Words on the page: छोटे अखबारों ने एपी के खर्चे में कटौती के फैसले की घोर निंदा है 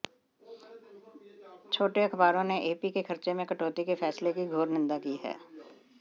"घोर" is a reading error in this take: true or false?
false